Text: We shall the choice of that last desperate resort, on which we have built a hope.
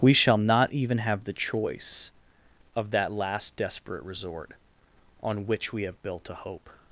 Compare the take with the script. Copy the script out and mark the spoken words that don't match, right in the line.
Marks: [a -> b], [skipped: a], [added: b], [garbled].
We shall [added: not even have] the choice of that last desperate resort, on which we have built a hope.